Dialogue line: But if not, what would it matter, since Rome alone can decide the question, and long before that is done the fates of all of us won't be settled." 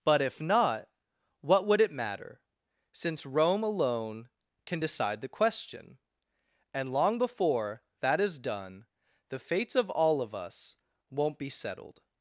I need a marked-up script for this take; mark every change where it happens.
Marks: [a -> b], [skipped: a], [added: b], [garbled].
But if not, what would it matter, since Rome alone can decide the question, and long before that is done the fates of all of us won't be settled."